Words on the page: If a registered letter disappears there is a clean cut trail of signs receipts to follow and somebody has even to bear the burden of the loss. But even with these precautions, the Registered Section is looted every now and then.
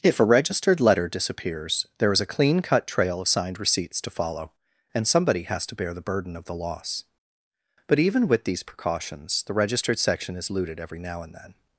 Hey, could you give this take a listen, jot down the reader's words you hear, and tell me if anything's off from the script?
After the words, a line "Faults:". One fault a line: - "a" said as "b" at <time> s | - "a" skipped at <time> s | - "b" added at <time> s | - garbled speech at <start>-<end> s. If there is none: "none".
If a registered letter disappears there is a clean cut trail of signed receipts to follow and somebody has to bear the burden of the loss. But even with these precautions, the Registered Section is looted every now and then.
Faults:
- "signs" said as "signed" at 3.3 s
- "even" skipped at 5.7 s